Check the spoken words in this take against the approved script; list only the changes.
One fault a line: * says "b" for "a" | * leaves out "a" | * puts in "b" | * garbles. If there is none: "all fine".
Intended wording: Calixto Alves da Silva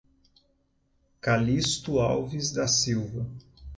all fine